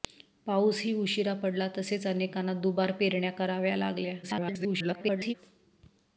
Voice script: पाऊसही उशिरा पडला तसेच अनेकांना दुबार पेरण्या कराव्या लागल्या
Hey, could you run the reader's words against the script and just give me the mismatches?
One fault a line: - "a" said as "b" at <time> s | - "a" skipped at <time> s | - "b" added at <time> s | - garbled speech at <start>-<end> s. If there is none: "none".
- garbled speech at 4.2-5.3 s